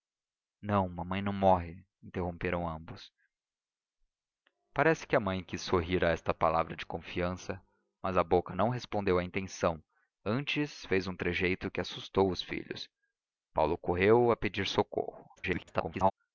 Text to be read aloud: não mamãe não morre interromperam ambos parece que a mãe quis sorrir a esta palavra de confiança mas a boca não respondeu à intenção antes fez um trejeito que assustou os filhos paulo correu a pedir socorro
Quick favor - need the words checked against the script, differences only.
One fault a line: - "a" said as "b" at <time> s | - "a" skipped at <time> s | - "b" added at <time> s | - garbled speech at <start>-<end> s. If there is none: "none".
- garbled speech at 15.4-16.1 s